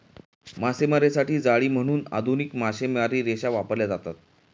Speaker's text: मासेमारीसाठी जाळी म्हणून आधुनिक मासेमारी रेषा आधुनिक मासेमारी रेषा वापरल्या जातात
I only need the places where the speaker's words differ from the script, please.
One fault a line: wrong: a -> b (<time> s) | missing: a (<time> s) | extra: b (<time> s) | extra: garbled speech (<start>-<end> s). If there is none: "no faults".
missing: आधुनिक मासेमारी रेषा (3.5 s)